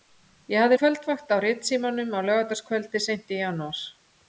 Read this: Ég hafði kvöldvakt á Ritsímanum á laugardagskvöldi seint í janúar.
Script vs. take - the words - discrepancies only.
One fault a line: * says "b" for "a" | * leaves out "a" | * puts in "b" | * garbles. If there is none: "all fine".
all fine